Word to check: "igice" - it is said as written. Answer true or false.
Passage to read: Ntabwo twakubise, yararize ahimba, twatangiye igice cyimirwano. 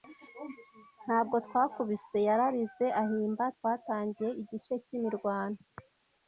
true